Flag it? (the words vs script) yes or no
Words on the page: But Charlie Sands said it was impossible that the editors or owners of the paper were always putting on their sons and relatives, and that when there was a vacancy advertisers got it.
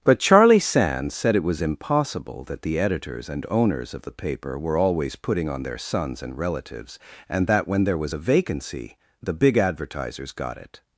yes